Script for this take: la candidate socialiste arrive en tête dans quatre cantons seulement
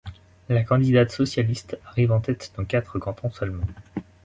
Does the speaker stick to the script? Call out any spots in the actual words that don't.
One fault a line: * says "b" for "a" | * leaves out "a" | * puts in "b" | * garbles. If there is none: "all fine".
all fine